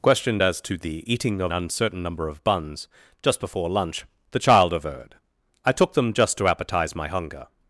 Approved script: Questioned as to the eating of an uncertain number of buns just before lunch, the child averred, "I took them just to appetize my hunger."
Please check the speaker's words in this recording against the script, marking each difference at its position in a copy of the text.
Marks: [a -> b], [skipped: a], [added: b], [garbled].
Questioned as to the eating of [skipped: an] uncertain number of buns just before lunch, the child averred, "I took them just to appetize my hunger."